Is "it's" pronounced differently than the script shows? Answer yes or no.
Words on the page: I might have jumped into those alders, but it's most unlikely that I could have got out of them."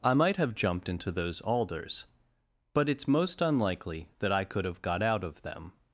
no